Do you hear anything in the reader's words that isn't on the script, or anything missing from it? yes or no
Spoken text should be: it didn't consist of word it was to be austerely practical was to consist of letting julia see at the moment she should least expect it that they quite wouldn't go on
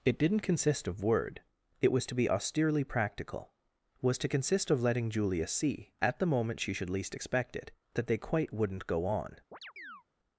no